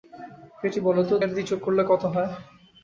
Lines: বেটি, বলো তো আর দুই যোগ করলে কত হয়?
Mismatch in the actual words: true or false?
false